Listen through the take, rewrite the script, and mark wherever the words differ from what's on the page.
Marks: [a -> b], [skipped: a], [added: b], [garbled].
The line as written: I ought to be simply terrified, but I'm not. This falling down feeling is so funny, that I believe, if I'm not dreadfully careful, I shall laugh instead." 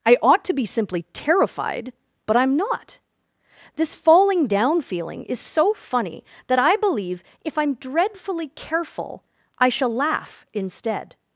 I ought to be simply terrified, but I'm not. This falling down feeling is so funny, that I believe, if I'm [skipped: not] dreadfully careful, I shall laugh instead."